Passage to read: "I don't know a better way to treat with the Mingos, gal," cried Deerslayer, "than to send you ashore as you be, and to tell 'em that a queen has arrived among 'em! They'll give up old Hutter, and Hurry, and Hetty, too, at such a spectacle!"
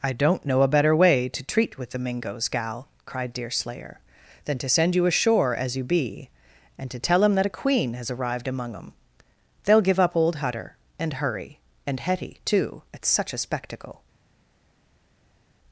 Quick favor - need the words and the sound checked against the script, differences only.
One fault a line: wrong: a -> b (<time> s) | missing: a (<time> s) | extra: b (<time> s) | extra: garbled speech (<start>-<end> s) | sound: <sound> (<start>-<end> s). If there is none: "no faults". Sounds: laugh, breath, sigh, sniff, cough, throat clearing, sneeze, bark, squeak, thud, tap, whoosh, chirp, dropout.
no faults